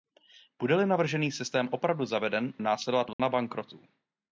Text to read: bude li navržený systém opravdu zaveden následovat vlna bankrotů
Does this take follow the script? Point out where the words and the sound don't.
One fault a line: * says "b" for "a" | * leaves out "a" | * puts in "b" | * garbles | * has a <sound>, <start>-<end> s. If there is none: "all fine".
* has a dropout, 3.1-3.2 s